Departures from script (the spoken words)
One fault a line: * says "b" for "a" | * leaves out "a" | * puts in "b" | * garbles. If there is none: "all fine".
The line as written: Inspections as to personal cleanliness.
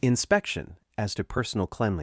* says "Inspection" for "Inspections"